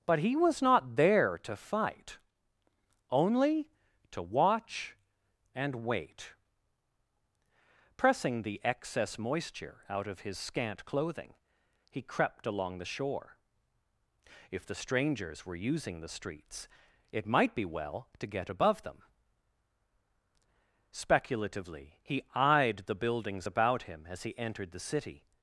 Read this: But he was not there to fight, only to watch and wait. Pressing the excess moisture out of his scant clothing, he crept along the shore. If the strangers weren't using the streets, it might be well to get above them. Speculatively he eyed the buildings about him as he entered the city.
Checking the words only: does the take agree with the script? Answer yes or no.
no